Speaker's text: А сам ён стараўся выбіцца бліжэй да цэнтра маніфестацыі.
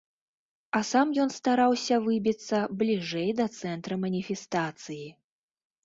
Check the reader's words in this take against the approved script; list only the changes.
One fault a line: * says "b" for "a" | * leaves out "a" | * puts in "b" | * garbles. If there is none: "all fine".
all fine